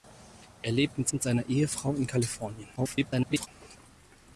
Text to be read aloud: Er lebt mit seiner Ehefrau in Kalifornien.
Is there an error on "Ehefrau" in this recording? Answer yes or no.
no